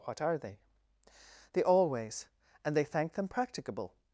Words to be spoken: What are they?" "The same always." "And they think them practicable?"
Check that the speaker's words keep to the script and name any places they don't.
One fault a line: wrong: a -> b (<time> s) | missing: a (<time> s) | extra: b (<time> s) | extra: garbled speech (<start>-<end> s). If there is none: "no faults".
missing: same (1.6 s)
wrong: think -> thank (2.9 s)